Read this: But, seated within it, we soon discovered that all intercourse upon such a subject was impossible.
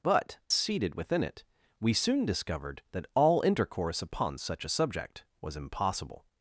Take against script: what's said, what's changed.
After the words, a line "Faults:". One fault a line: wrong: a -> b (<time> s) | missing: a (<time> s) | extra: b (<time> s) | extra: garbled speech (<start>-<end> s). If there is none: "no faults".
But, seated within it, we soon discovered that all intercourse upon such a subject was impossible.
Faults:
no faults